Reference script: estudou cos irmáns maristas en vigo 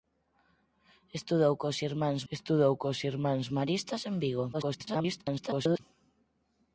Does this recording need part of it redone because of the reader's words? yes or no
yes